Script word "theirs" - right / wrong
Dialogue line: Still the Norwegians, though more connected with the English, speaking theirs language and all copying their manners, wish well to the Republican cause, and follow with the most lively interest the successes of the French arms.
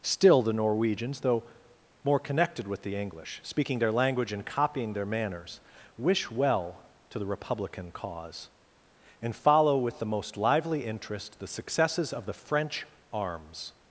wrong